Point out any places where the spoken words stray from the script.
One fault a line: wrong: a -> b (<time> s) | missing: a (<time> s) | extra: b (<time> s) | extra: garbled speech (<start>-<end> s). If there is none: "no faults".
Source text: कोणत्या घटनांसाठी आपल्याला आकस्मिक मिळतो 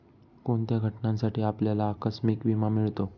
extra: विमा (2.5 s)